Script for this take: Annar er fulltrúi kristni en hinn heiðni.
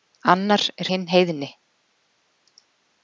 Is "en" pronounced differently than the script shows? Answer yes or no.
yes